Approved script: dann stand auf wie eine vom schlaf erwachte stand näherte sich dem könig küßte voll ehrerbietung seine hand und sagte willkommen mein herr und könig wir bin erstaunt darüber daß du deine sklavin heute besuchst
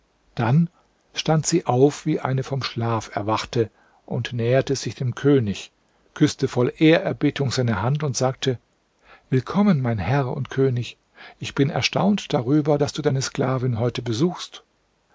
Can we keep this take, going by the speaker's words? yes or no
no